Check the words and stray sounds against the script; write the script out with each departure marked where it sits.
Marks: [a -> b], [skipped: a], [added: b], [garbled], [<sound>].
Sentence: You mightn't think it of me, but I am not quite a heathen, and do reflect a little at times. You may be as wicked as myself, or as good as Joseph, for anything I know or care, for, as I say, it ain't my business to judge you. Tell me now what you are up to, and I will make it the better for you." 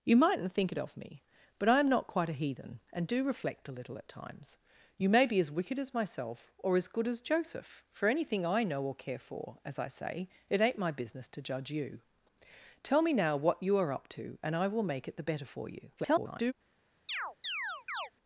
You mightn't think it of me, but I am not quite a heathen, and do reflect a little at times. You may be as wicked as myself, or as good as Joseph, for anything I know or care, for, as I say, it ain't my business to judge you. Tell me now what you are up to, and I will make it the better for you." [garbled] [chirp]